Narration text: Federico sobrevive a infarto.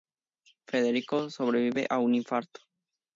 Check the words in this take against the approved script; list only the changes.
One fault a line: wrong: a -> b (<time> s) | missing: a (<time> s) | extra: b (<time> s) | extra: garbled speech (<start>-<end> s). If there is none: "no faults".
extra: un (2.0 s)